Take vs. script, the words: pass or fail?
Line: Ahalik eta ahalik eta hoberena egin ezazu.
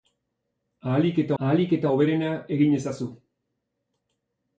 pass